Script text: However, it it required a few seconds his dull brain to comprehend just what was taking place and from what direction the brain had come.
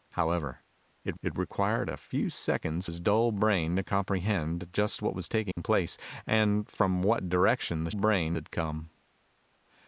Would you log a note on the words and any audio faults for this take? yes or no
yes